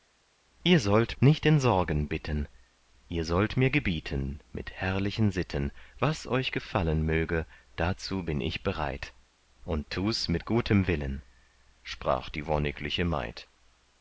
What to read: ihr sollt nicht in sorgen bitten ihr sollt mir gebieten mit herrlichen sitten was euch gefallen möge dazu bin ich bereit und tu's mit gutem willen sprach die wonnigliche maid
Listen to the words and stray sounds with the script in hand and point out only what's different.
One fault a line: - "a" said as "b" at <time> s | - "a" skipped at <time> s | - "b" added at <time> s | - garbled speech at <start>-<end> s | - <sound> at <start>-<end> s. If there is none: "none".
none